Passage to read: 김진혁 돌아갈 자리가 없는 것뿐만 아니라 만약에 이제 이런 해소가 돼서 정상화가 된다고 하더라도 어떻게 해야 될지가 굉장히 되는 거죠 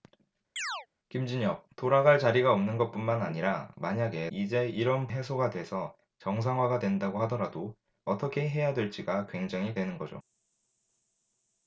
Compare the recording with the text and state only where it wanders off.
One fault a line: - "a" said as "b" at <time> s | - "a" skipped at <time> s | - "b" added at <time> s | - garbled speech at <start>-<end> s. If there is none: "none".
none